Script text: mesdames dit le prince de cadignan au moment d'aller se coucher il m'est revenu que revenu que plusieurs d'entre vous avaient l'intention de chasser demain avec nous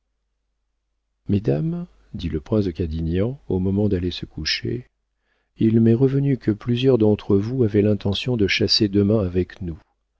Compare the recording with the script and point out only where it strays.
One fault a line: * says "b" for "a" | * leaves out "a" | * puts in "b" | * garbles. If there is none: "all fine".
* leaves out "revenu que"